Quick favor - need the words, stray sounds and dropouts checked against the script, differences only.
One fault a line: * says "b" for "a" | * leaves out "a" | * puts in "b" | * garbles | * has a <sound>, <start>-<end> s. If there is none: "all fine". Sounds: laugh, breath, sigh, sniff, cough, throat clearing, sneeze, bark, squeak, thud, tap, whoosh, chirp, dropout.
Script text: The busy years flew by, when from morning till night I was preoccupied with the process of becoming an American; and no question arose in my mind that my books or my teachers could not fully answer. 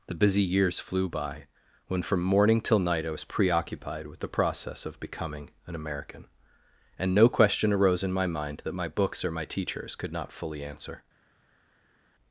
all fine